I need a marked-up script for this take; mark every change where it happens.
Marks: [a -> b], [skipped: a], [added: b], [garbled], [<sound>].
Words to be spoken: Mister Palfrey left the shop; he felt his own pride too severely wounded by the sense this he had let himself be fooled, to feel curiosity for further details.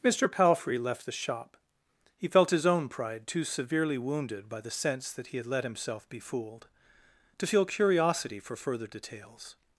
Mister Palfrey left the shop; he felt his own pride too severely wounded by the sense [this -> that] he had let himself be fooled, to feel curiosity for further details.